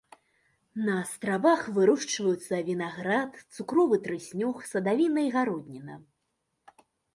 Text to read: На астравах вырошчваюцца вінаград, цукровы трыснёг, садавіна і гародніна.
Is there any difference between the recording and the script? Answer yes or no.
no